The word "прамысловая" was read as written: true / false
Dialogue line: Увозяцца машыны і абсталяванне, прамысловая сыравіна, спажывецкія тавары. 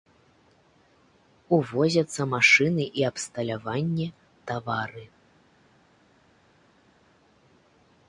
false